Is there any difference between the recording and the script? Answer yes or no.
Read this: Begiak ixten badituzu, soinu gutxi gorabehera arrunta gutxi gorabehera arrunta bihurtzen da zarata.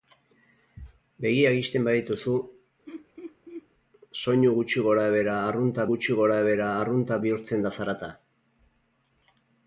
no